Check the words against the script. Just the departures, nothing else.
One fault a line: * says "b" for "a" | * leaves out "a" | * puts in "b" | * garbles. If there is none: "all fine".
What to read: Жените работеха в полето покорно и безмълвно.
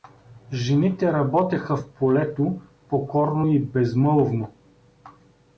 all fine